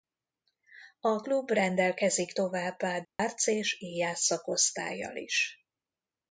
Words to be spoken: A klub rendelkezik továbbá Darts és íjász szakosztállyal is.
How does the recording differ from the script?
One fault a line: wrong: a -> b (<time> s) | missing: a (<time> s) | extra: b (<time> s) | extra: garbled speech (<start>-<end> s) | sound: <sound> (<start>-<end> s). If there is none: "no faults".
sound: dropout (3.0-3.2 s)